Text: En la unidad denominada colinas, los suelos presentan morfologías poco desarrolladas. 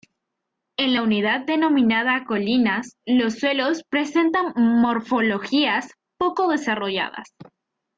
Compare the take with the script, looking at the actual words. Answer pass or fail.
pass